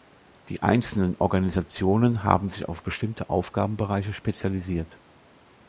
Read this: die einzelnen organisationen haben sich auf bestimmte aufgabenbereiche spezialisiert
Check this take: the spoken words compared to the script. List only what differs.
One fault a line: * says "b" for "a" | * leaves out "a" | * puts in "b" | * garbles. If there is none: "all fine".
all fine